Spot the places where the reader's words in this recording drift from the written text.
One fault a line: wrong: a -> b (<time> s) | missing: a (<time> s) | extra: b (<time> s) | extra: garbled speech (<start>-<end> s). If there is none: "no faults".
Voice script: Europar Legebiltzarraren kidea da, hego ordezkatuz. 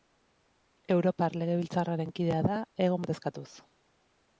no faults